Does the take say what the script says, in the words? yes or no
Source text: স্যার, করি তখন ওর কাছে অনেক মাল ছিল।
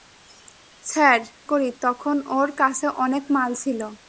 yes